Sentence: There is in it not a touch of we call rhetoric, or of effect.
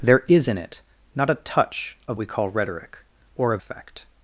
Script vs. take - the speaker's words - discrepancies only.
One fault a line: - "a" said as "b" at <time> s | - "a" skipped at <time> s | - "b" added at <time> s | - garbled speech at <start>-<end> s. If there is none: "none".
none